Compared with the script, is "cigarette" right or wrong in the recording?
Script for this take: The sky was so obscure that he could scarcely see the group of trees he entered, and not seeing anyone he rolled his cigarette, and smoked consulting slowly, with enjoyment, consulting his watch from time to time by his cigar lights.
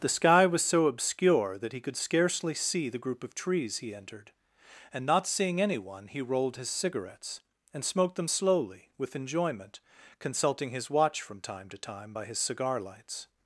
wrong